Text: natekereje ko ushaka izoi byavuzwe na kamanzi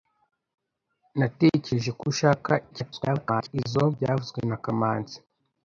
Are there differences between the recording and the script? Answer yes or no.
yes